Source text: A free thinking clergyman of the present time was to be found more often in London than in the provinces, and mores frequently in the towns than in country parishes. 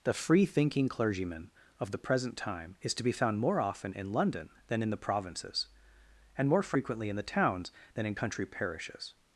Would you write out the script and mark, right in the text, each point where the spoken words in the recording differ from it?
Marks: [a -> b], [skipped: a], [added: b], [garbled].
[A -> The] free thinking clergyman of the present time [was -> is] to be found more often in London than in the provinces, and [mores -> more] frequently in the towns than in country parishes.